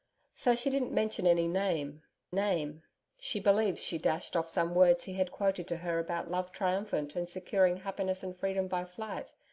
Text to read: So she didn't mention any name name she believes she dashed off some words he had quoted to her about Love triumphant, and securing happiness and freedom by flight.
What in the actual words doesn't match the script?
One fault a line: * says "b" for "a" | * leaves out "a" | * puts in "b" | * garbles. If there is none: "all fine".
all fine